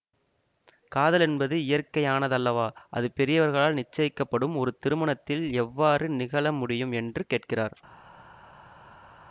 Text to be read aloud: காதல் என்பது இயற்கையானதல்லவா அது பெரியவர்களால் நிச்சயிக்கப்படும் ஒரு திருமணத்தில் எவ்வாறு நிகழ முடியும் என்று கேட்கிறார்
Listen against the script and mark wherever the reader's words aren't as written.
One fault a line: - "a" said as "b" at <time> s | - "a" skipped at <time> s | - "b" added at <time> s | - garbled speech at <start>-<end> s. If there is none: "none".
none